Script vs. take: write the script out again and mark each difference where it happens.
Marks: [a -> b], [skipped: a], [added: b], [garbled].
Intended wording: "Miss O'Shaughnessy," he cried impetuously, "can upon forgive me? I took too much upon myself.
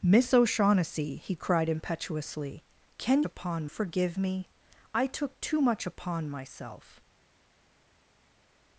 "Miss O'Shaughnessy," he cried impetuously, "can upon forgive me? I took too much upon myself.